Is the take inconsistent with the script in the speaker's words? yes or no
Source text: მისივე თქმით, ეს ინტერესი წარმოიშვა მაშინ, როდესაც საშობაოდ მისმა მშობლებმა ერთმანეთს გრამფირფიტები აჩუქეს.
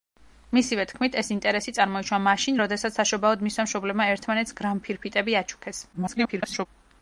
yes